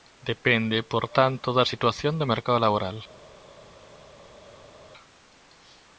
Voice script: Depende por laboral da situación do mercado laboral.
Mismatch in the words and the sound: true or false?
true